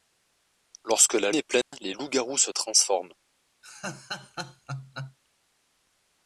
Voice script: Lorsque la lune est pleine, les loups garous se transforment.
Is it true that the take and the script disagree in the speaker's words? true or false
true